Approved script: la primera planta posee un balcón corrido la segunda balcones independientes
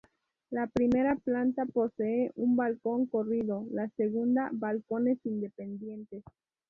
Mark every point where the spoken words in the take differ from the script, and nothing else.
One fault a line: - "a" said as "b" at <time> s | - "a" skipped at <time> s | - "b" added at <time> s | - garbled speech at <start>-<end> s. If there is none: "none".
none